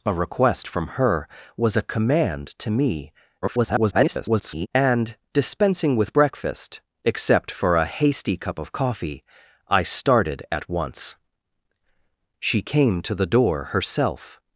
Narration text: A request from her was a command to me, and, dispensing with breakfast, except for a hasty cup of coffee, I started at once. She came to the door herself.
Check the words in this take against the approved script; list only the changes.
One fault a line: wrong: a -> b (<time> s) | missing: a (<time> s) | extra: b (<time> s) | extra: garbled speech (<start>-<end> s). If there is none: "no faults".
extra: garbled speech (3.4-4.7 s)